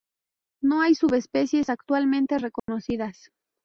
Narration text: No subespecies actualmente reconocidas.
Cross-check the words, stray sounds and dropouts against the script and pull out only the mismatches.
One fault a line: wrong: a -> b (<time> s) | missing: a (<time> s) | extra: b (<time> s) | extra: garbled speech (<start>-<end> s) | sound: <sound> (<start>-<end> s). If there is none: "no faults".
extra: hay (0.8 s)
sound: dropout (2.6-2.7 s)